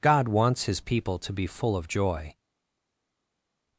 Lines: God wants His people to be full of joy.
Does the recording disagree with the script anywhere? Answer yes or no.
no